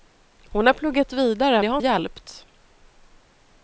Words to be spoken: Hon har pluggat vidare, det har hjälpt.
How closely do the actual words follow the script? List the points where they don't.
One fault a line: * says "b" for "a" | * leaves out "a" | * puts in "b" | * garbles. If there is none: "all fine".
all fine